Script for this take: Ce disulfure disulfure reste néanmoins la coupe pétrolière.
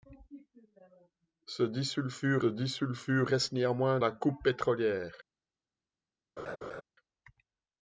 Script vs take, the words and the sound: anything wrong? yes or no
yes